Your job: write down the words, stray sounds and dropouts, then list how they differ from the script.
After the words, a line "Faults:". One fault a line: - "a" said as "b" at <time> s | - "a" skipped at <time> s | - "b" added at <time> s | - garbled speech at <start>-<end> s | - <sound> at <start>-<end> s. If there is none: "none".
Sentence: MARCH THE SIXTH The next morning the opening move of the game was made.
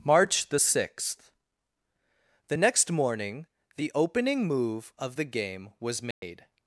MARCH THE SIXTH The next morning the opening move of the game was made.
Faults:
- dropout at 6.1-6.2 s